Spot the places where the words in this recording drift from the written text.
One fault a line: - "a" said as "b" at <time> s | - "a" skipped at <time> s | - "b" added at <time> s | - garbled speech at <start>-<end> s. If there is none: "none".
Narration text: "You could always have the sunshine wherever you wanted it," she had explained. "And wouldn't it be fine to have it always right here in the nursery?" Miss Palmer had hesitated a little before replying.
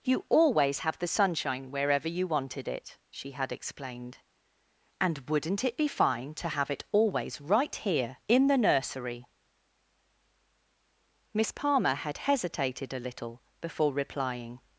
- "could" skipped at 0.2 s